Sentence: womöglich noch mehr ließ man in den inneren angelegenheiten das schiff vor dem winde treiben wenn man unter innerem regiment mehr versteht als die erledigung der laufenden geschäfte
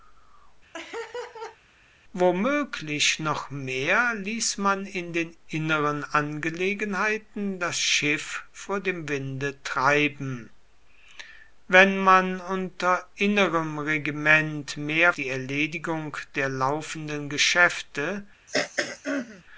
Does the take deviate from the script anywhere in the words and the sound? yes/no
yes